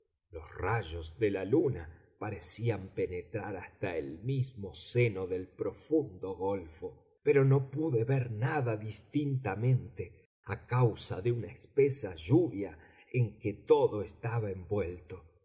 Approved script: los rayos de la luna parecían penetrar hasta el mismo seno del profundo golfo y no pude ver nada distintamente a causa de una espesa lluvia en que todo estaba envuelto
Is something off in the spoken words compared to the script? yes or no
yes